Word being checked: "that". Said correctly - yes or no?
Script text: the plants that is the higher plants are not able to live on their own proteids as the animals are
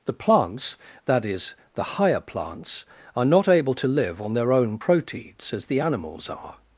yes